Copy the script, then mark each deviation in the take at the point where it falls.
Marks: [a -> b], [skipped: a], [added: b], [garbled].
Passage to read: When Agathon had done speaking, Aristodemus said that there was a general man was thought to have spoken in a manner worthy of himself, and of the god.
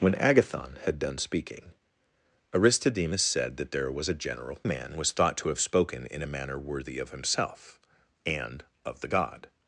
When Agathon had done speaking, Aristodemus said that there was a general man was thought to have spoken in a manner worthy of himself, and of the god.